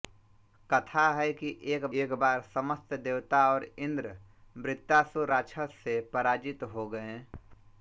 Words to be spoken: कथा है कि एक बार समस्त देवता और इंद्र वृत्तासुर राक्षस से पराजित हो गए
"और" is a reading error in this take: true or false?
false